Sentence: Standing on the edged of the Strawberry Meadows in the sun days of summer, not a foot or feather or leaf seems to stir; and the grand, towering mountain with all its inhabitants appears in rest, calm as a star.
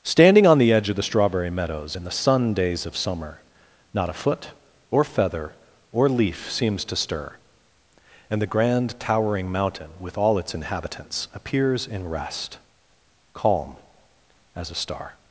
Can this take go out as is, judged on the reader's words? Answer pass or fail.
fail